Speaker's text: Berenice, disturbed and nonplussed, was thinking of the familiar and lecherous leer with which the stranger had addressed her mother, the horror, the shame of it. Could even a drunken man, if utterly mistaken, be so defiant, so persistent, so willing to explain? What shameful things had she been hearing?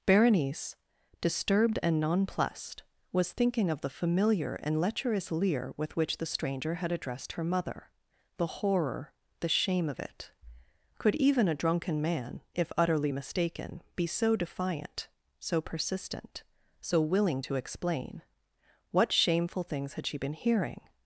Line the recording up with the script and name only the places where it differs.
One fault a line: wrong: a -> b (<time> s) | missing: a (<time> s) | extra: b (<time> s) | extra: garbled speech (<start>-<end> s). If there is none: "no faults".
no faults